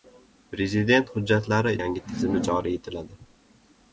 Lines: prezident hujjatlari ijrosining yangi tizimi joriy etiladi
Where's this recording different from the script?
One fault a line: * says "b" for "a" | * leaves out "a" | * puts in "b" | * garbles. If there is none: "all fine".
* leaves out "ijrosining"